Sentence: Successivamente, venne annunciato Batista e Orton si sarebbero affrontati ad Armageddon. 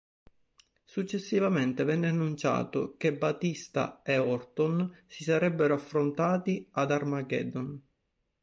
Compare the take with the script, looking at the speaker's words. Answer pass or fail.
fail